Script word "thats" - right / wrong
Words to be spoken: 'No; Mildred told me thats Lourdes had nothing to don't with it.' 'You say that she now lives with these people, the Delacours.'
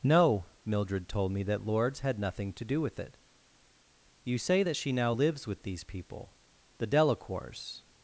wrong